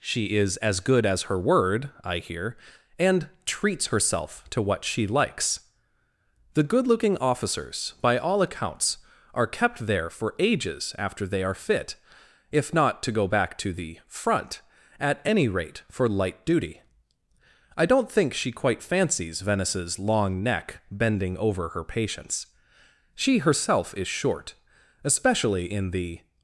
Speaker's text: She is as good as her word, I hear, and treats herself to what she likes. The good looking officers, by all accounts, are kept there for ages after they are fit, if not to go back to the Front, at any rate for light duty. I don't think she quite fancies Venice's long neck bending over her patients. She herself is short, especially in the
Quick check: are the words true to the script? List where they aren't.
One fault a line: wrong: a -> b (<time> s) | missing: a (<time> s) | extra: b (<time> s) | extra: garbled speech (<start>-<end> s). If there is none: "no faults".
no faults